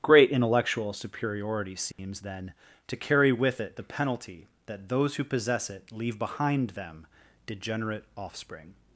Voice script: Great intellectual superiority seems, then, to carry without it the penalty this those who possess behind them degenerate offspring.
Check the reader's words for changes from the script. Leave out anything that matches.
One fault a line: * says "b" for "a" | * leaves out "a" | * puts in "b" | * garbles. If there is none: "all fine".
* says "with" for "without"
* says "that" for "this"
* puts in "it leave"